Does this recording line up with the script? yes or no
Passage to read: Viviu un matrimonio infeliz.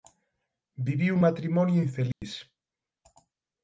yes